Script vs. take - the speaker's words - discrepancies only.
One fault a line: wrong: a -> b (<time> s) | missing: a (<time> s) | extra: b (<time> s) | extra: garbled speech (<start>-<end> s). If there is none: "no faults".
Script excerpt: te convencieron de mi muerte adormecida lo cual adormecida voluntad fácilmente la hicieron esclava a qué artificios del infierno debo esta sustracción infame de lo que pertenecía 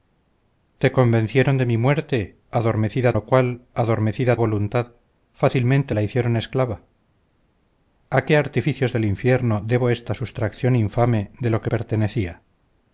no faults